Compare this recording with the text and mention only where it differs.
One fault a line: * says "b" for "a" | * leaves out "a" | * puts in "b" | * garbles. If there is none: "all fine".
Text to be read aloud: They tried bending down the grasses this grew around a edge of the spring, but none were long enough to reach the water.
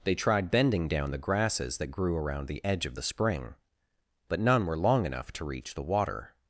* says "that" for "this"
* says "the" for "a"